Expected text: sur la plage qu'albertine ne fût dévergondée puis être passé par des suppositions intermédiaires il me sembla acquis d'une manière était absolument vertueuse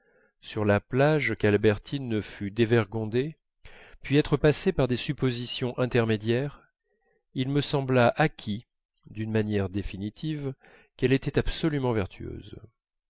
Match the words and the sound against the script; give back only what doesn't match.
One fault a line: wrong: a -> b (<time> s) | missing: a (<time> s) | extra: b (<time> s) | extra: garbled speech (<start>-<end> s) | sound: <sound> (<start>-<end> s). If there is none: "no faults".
extra: définitive qu'elle (9.7 s)